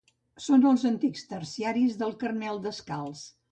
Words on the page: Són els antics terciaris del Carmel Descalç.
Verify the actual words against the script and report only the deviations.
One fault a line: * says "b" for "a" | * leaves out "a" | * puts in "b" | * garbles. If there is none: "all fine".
all fine